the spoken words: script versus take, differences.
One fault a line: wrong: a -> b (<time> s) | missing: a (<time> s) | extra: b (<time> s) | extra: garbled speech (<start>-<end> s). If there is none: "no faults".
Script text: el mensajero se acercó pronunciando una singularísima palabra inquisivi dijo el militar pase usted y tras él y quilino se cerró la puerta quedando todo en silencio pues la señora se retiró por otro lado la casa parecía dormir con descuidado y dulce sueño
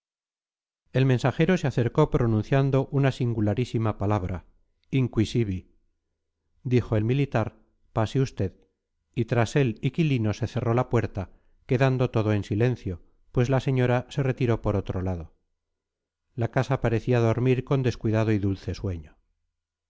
no faults